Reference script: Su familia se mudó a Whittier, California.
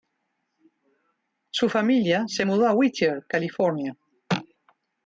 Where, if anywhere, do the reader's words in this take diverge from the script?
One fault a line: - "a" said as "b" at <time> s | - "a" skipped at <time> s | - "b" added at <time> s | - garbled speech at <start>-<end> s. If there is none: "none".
none